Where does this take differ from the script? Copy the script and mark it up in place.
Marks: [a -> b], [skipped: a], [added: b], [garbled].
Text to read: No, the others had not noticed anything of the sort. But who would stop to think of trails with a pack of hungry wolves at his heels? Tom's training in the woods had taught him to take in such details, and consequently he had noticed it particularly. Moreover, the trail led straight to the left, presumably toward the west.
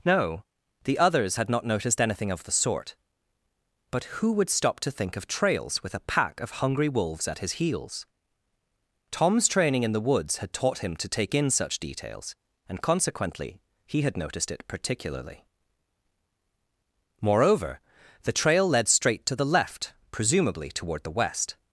No, the others had not noticed anything of the sort. But who would stop to think of trails with a pack of hungry wolves at his heels? Tom's training in the woods had taught him to take in such details, and consequently he had noticed it particularly. Moreover, the trail led straight to the left, presumably toward the west.